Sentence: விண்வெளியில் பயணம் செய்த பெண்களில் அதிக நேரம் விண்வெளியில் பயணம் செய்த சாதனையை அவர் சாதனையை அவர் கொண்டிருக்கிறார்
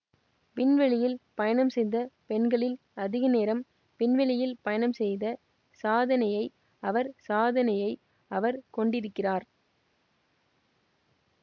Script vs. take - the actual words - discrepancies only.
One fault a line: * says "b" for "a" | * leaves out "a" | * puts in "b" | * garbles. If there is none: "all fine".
all fine